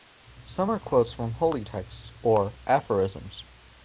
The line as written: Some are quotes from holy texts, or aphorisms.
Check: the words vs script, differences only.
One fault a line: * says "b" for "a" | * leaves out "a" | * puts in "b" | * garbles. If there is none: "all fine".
all fine